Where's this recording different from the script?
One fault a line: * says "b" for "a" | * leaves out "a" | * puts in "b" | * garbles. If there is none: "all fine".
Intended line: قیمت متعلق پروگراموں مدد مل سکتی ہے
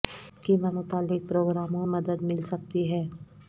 all fine